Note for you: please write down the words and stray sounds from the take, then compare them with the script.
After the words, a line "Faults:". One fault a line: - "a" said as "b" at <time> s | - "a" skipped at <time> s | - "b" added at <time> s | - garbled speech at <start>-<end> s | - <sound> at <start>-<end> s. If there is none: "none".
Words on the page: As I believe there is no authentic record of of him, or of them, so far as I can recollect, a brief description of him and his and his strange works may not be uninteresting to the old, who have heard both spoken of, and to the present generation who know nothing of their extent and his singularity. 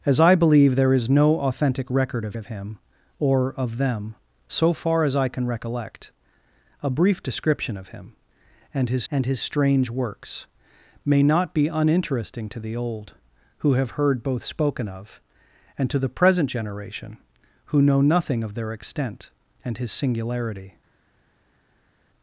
As I believe there is no authentic record of of him, or of them, so far as I can recollect, a brief description of him and his and his strange works may not be uninteresting to the old, who have heard both spoken of, and to the present generation who know nothing of their extent and his singularity.
Faults:
none